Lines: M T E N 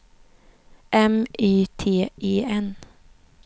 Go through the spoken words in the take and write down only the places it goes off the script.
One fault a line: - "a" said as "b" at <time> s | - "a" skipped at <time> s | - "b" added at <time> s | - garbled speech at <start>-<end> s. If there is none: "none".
- "Y" added at 1.4 s